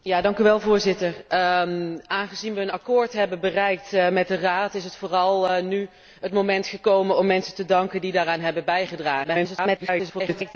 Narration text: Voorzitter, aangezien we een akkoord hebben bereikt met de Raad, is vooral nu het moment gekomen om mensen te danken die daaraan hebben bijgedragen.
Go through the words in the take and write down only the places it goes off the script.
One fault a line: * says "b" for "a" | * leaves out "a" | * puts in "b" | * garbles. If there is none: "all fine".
* garbles